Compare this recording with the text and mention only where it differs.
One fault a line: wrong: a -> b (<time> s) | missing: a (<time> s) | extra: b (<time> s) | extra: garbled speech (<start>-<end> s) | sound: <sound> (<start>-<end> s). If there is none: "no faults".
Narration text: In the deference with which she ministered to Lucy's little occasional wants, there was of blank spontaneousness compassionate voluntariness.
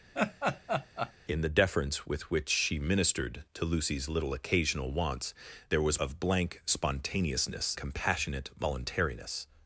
sound: laugh (0.1-1.1 s)